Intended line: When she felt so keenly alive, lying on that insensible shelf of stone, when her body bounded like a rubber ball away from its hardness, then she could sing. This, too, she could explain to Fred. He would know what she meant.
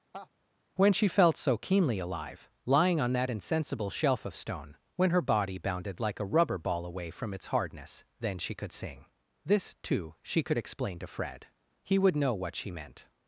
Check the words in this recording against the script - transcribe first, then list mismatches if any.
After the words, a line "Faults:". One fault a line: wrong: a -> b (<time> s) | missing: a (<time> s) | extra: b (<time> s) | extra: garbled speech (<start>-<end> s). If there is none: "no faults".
When she felt so keenly alive, lying on that insensible shelf of stone, when her body bounded like a rubber ball away from its hardness, then she could sing. This, too, she could explain to Fred. He would know what she meant.
Faults:
no faults